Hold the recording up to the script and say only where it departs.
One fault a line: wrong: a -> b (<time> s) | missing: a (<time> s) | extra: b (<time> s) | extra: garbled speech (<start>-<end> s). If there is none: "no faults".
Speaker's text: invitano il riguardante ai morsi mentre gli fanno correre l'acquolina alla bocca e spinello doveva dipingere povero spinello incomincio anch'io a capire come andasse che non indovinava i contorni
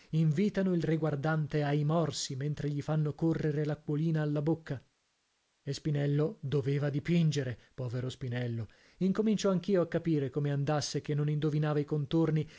no faults